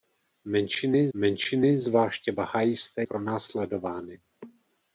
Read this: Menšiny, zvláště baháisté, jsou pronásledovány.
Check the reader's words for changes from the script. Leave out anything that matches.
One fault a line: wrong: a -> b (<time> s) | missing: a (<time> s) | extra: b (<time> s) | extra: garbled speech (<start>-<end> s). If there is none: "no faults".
extra: menšiny (1.1 s)
missing: jsou (3.0 s)